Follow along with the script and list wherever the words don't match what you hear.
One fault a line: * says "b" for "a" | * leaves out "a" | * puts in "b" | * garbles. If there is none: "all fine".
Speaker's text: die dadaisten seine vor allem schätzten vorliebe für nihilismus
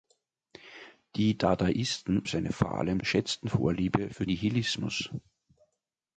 all fine